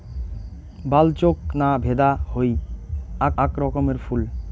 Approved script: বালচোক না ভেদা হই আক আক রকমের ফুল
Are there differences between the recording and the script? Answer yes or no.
no